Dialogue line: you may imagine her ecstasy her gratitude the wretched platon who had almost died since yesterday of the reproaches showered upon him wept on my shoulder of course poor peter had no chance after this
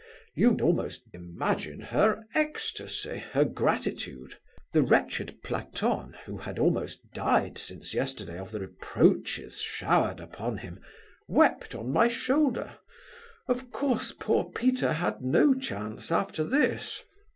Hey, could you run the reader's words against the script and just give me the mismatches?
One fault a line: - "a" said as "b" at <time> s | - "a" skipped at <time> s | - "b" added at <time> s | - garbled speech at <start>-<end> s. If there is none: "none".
- "may" said as "almost" at 0.6 s